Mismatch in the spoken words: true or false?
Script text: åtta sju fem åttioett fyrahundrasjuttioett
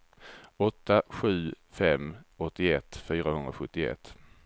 false